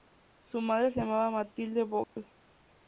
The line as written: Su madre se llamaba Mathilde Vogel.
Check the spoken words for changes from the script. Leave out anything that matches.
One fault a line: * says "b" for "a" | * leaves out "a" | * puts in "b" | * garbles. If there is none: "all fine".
all fine